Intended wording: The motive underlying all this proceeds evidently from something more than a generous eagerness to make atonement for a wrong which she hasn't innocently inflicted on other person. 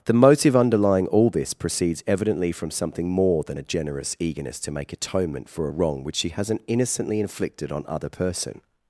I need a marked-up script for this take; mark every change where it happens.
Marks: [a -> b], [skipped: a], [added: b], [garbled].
The motive underlying all this proceeds evidently from something more than a generous eagerness to make atonement for a wrong which she hasn't innocently inflicted on other person.